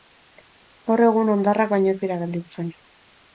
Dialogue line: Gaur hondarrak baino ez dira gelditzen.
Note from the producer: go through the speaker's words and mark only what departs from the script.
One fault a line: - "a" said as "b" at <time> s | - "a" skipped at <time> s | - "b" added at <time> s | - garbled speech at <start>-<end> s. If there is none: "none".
- "egun" added at 1.1 s